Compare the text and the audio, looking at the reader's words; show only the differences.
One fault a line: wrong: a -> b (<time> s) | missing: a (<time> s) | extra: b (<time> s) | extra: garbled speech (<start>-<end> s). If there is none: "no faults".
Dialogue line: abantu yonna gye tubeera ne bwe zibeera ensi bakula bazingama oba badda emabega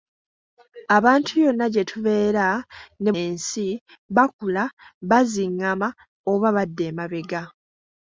missing: bwe zibeera (3.1 s)